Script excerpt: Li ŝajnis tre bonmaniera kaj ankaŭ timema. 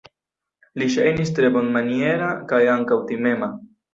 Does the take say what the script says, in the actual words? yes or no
yes